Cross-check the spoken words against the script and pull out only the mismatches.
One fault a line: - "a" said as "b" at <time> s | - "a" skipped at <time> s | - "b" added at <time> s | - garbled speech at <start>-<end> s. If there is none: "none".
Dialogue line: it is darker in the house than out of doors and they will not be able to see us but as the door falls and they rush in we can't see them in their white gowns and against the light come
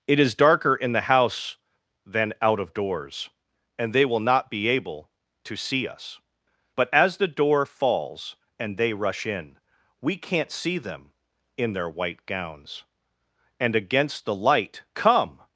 none